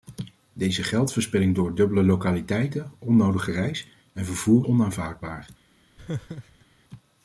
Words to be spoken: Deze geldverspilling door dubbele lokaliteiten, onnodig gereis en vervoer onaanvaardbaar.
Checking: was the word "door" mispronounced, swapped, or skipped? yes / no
no